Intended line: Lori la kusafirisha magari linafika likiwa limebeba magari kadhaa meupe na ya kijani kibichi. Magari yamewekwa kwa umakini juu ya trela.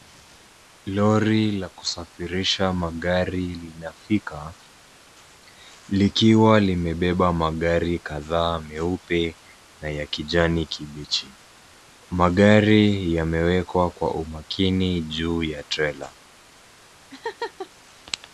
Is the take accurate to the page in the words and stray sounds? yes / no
no